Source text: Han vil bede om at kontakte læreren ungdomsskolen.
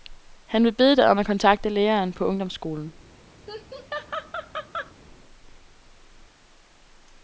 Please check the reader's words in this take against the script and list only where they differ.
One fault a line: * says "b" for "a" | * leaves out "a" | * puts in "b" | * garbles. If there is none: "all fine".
* puts in "dig"
* puts in "på"